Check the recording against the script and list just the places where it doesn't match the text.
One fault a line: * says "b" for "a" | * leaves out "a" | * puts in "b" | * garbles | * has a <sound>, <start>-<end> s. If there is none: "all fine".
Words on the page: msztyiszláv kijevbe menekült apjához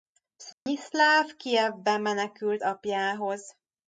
* has a dropout, 0.5-0.7 s